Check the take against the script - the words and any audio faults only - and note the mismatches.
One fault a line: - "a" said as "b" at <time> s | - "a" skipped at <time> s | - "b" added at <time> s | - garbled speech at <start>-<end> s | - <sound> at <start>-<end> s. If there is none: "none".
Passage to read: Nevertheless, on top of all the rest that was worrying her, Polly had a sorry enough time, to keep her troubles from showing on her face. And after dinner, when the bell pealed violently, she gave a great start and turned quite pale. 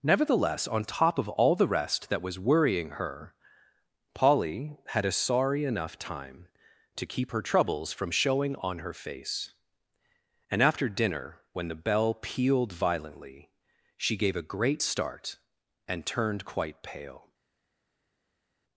none